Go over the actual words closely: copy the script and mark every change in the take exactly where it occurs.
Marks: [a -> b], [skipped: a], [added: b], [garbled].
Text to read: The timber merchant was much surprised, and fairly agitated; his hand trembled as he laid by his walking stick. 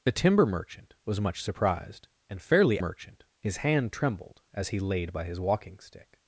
The timber merchant was much surprised, and fairly [agitated; -> merchant] his hand trembled as he laid by his walking stick.